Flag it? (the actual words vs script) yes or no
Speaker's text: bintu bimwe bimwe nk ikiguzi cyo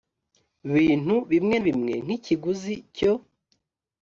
no